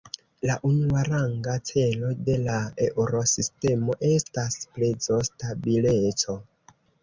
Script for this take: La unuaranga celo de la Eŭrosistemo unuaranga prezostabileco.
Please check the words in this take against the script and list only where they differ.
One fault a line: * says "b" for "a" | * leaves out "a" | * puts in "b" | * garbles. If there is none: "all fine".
* says "estas" for "unuaranga"